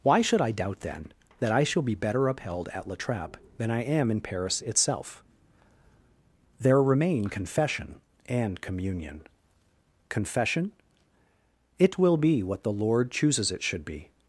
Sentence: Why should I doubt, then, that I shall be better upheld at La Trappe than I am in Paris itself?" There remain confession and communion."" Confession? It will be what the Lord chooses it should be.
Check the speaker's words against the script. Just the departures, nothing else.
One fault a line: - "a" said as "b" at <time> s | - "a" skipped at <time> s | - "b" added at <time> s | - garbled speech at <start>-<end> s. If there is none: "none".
none